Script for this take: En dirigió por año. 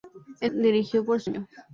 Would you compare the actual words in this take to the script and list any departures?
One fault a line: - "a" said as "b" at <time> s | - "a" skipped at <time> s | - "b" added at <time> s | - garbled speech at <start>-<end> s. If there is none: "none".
none